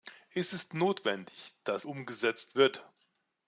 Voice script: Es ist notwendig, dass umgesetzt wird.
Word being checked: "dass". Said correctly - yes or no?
yes